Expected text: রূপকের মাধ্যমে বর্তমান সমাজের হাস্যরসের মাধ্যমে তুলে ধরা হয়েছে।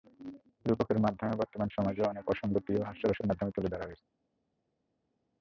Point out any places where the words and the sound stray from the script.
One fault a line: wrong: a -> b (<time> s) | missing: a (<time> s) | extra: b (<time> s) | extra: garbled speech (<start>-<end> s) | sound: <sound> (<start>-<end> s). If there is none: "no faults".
extra: অনেক অসংগতিও (2.1 s)